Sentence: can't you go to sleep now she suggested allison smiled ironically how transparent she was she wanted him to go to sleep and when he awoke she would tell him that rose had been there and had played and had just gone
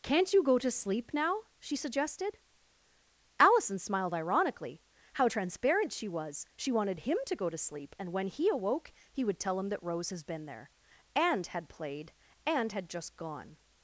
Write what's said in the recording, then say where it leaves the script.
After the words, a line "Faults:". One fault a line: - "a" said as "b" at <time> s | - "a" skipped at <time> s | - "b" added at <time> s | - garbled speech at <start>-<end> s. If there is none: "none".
can't you go to sleep now she suggested allison smiled ironically how transparent she was she wanted him to go to sleep and when he awoke he would tell him that rose has been there and had played and had just gone
Faults:
- "she" said as "he" at 9.1 s
- "had" said as "has" at 10.1 s